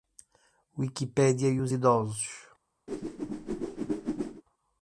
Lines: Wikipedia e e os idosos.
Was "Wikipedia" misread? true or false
false